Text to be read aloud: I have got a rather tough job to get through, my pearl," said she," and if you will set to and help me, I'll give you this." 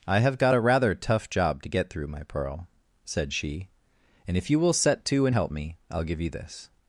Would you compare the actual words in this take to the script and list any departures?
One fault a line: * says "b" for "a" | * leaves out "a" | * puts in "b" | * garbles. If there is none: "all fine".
all fine